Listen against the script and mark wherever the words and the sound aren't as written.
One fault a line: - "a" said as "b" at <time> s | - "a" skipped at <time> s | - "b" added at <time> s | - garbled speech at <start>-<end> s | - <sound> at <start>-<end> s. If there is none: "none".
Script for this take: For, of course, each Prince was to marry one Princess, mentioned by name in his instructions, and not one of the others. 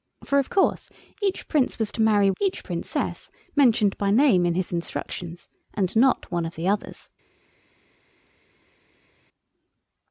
- "one" said as "each" at 2.4 s